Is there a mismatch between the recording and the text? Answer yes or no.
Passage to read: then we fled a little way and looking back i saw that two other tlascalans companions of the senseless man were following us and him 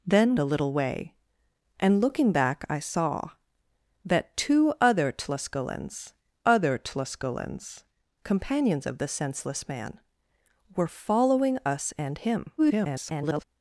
yes